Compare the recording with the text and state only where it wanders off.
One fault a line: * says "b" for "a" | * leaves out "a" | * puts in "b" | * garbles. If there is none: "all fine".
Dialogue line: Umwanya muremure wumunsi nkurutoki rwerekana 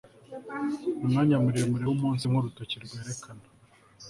all fine